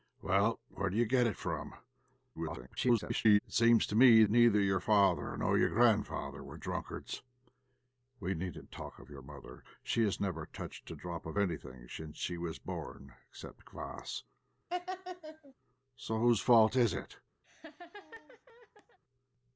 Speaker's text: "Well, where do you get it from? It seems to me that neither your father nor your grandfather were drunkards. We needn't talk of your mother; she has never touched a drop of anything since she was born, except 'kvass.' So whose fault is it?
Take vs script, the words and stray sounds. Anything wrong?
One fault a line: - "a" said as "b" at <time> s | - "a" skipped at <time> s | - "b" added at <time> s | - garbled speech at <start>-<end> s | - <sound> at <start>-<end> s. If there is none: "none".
- garbled speech at 2.3-3.4 s
- "that" skipped at 4.2 s
- laugh at 14.7-15.5 s
- laugh at 17.4-19.0 s